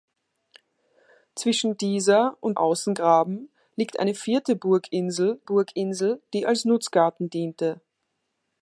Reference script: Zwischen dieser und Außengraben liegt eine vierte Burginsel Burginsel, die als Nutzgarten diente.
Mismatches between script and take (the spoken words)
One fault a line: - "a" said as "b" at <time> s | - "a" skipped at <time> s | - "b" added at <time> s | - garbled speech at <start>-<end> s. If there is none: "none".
none